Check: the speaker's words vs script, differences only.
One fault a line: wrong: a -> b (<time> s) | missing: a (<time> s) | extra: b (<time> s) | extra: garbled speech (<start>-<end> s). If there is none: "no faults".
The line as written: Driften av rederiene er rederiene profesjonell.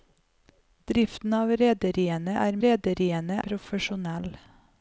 no faults